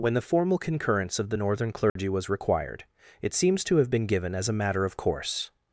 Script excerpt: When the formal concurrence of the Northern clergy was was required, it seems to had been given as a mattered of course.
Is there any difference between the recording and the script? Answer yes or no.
yes